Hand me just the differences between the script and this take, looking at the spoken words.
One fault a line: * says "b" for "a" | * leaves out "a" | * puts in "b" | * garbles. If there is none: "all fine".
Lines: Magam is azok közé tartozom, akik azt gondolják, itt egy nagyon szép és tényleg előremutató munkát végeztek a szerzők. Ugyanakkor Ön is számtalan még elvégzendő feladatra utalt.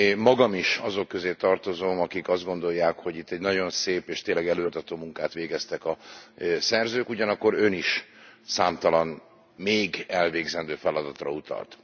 * puts in "hogy"